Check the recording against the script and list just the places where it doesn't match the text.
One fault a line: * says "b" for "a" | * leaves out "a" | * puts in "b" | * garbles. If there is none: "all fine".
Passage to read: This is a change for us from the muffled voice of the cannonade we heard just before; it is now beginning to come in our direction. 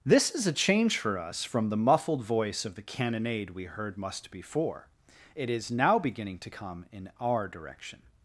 * says "must" for "just"